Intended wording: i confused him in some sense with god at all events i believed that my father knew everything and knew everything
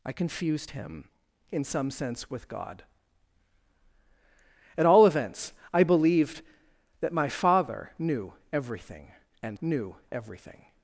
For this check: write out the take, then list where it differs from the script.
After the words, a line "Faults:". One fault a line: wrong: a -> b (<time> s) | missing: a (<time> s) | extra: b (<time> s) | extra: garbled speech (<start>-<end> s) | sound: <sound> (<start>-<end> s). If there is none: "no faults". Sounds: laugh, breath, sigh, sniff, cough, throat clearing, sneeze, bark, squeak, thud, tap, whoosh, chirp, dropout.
i confused him in some sense with god at all events i believed that my father knew everything and knew everything
Faults:
no faults